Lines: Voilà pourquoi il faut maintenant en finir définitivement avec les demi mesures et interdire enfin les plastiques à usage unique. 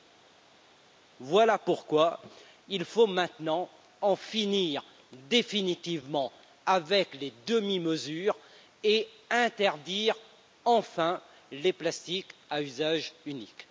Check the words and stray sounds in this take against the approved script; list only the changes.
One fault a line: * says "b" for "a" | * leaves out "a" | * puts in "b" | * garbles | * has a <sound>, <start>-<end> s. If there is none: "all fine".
all fine